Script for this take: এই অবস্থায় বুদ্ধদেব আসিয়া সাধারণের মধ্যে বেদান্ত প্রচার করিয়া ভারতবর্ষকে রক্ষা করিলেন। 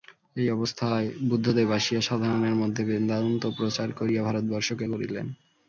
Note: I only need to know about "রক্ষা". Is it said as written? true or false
false